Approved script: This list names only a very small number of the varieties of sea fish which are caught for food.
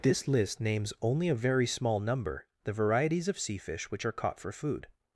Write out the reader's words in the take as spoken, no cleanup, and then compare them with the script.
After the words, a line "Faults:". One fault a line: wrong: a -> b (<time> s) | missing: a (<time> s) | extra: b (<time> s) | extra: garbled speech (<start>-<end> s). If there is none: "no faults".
This list names only a very small number the varieties of sea fish which are caught for food.
Faults:
missing: of (2.5 s)